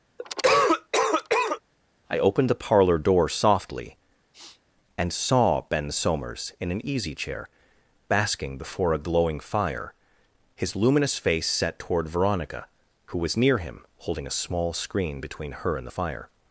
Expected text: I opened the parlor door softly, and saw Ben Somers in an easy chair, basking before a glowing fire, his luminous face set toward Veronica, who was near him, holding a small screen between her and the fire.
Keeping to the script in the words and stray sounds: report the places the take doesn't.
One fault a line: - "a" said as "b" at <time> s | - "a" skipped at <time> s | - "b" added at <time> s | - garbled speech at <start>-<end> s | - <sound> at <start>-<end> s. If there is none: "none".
- cough at 0.2-1.6 s
- sniff at 4.3-4.6 s